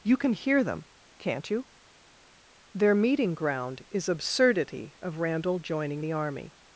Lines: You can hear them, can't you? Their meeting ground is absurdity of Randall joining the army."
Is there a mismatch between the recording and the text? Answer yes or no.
no